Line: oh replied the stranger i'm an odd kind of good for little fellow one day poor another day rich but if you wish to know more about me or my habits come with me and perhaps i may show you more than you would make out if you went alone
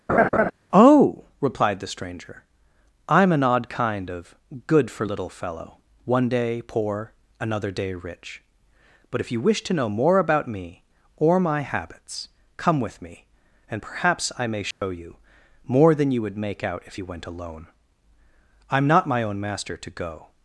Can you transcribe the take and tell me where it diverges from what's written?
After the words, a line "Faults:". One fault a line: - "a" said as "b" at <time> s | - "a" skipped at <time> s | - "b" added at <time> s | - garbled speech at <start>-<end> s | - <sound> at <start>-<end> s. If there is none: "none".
oh replied the stranger i'm an odd kind of good for little fellow one day poor another day rich but if you wish to know more about me or my habits come with me and perhaps i may show you more than you would make out if you went alone i'm not my own master to go
Faults:
- laugh at 0.1-0.5 s
- dropout at 14.7-14.8 s
- "i'm not my own master to go" added at 18.7 s